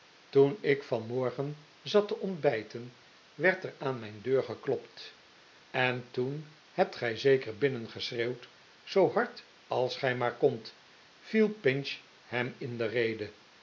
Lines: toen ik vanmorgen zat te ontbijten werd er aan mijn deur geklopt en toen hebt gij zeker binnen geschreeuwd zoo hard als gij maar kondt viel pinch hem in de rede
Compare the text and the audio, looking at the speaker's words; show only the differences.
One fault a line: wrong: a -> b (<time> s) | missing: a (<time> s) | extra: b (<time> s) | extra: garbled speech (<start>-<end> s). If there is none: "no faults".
no faults